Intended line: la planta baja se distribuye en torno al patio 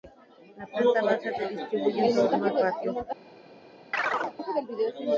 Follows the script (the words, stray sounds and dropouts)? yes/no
no